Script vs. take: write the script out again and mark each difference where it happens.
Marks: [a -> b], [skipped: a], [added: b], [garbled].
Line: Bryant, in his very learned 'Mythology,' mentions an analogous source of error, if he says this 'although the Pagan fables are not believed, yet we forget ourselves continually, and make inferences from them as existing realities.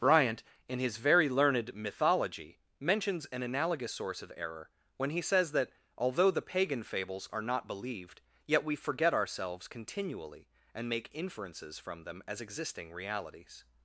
Bryant, in his very learned 'Mythology,' mentions an analogous source of error, [if -> when] he says [this -> that] 'although the Pagan fables are not believed, yet we forget ourselves continually, and make inferences from them as existing realities.